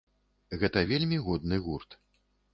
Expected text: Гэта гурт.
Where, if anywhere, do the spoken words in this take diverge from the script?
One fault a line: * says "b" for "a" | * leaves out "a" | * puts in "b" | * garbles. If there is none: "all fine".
* puts in "вельмі годны"